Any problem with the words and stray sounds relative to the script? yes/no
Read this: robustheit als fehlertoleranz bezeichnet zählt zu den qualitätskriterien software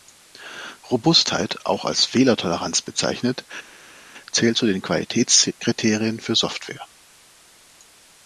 yes